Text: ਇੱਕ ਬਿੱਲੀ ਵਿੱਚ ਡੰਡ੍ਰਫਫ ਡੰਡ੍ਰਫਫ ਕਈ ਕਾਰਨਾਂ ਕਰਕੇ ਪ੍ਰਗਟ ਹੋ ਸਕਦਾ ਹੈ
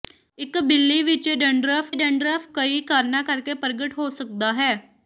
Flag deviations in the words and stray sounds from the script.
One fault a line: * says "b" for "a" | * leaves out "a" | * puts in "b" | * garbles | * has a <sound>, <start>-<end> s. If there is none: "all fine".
all fine